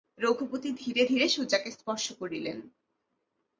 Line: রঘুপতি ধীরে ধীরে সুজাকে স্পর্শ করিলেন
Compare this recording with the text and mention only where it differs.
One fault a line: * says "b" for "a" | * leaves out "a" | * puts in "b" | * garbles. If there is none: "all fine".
all fine